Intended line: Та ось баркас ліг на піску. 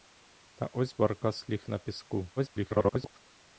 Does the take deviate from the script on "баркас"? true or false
false